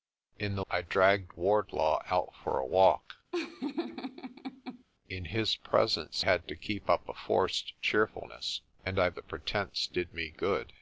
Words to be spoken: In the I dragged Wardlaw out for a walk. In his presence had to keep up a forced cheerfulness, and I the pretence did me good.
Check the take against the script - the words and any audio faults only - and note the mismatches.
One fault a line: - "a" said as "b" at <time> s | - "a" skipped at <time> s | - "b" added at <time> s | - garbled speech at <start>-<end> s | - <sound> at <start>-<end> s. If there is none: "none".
- laugh at 3.3-4.8 s